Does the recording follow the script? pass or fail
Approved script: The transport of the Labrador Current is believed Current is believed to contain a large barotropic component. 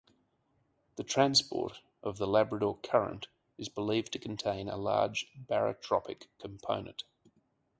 fail